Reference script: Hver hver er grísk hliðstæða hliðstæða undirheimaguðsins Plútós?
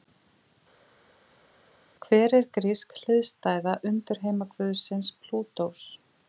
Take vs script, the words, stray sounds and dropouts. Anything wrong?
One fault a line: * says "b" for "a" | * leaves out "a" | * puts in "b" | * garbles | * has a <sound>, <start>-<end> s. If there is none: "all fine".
* leaves out "hver"
* leaves out "hliðstæða"